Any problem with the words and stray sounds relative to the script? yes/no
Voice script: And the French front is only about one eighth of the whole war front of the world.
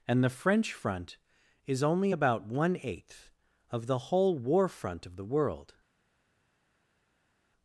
no